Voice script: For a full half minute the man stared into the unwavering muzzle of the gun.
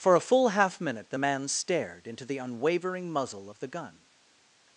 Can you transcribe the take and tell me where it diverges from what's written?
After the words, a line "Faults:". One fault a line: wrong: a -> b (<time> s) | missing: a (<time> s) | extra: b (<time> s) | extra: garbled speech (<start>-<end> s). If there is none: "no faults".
For a full half minute the man stared into the unwavering muzzle of the gun.
Faults:
no faults